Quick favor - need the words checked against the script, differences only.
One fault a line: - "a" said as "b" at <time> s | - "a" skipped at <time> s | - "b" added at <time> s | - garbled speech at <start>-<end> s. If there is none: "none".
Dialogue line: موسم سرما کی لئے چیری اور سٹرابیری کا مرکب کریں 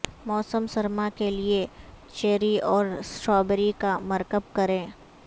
- "کی" said as "کے" at 1.1 s